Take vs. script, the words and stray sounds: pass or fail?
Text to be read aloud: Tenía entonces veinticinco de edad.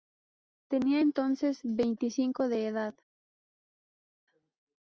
pass